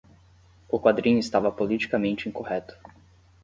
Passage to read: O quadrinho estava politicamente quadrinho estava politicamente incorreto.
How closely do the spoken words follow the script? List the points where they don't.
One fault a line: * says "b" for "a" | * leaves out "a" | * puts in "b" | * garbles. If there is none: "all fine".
* leaves out "quadrinho estava politicamente"